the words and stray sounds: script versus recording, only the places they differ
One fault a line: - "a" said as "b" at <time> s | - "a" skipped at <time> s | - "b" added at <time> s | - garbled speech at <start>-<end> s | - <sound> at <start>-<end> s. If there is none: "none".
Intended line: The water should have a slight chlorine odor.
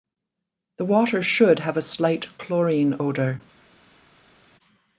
none